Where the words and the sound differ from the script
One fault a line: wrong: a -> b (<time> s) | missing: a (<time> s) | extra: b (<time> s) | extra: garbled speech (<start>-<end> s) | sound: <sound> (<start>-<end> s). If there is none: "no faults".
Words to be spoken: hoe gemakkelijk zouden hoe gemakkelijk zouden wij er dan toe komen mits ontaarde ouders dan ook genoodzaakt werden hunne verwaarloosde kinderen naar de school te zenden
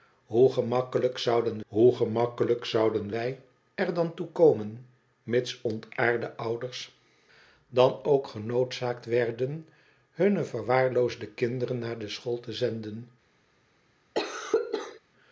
sound: cough (14.1-15.0 s)